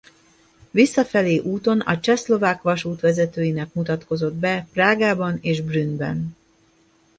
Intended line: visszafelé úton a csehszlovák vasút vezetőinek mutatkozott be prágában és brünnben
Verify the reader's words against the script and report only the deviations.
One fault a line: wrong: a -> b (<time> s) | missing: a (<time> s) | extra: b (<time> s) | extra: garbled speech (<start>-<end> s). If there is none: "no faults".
no faults